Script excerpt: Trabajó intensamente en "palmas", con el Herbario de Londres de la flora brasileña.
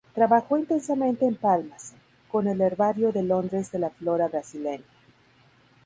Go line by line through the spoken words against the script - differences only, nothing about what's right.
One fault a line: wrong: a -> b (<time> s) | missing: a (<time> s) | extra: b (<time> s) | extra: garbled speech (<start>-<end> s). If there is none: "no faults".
no faults